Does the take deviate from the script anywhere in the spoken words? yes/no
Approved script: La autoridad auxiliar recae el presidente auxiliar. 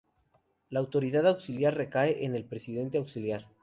yes